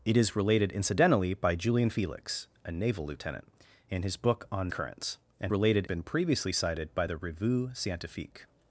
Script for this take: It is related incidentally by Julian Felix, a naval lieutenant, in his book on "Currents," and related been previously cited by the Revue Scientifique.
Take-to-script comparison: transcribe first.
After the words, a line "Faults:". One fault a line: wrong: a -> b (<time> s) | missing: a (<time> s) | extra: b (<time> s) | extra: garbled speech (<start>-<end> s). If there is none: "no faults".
It is related incidentally by Julian Felix, a naval lieutenant, in his book on "Currents," and related been previously cited by the Revue Scientifique.
Faults:
no faults